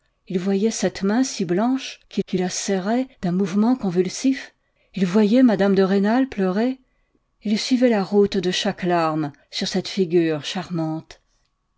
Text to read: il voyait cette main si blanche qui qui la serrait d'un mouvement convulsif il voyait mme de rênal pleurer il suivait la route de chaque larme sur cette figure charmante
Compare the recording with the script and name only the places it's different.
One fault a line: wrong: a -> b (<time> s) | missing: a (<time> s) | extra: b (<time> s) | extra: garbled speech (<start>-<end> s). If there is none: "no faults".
no faults